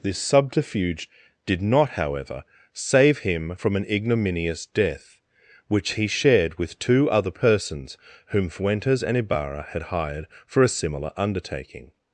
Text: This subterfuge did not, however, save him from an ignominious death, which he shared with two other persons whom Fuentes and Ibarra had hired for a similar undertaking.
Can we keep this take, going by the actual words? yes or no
yes